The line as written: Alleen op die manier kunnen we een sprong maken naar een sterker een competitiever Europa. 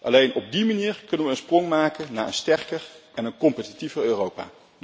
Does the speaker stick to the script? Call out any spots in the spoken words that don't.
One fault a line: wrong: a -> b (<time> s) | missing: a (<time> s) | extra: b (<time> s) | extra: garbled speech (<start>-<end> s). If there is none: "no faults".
extra: en (3.1 s)